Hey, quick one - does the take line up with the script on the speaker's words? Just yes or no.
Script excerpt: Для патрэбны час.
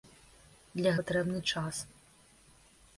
yes